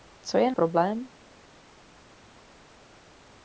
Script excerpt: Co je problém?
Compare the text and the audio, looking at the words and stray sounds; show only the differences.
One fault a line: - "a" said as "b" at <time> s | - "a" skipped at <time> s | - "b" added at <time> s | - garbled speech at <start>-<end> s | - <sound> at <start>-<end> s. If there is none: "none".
none